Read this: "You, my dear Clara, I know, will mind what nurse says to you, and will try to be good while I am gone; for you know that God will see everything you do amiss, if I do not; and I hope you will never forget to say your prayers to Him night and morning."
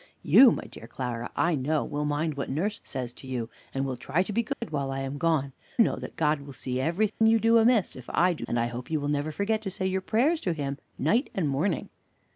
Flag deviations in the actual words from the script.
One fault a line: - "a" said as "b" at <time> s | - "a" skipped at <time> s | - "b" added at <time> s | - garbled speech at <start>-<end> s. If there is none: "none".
- "for you" skipped at 5.5 s
- "not" skipped at 8.5 s